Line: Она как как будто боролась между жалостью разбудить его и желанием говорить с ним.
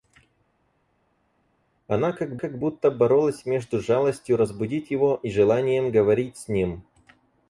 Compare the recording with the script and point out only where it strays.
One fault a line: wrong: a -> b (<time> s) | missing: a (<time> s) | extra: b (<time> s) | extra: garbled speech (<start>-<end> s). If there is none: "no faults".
no faults